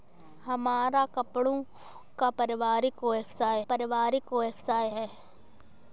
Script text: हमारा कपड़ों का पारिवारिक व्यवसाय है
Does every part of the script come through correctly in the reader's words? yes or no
no